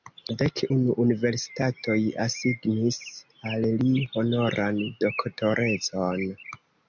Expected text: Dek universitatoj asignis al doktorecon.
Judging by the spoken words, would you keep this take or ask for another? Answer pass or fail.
fail